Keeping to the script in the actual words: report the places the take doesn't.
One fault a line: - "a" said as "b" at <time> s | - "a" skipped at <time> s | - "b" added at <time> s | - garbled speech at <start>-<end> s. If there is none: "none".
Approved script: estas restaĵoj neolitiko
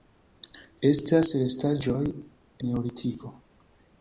none